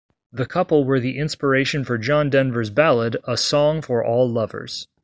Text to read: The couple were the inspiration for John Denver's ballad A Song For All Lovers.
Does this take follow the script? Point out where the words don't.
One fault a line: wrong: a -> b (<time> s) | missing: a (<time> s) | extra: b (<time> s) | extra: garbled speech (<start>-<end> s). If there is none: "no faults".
no faults